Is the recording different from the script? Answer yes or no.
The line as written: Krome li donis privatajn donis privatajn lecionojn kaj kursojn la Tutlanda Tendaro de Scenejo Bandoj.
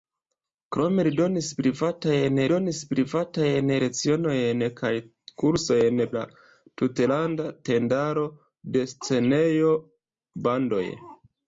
no